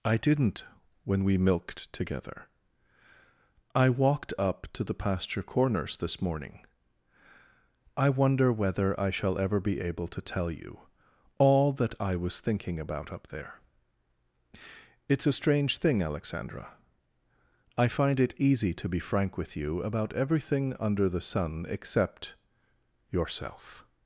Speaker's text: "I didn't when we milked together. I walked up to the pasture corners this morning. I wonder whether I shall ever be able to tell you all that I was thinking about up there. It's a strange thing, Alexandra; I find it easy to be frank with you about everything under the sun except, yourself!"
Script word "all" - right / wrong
right